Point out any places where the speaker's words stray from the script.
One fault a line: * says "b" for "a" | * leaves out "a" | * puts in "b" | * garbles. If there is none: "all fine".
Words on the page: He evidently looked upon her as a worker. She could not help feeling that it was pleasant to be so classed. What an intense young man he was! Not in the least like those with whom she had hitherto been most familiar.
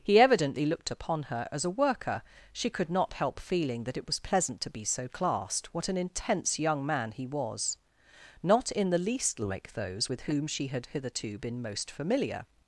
all fine